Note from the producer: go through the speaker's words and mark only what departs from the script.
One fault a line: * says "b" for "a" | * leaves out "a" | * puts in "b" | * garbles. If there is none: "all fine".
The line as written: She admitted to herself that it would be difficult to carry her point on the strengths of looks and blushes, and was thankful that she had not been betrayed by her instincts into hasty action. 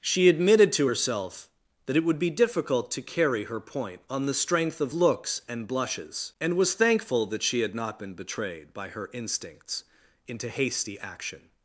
* says "strength" for "strengths"